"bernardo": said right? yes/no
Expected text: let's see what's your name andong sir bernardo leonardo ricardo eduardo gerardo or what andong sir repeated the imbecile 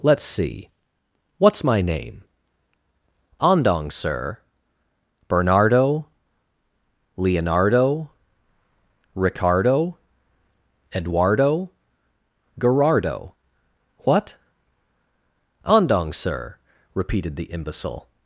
yes